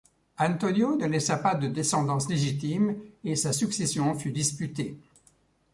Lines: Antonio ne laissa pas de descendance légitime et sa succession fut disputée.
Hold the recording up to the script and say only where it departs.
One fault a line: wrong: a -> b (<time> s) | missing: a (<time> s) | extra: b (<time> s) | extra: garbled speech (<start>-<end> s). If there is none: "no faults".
no faults